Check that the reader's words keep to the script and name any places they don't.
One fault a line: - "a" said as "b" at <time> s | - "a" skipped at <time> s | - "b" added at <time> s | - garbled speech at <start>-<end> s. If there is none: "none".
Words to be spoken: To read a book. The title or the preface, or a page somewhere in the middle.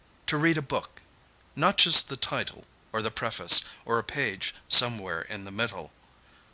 - "Not just" added at 1.6 s